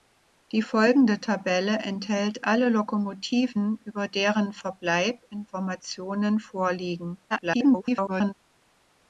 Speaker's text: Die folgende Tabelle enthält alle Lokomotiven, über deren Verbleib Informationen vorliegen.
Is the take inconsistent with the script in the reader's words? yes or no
yes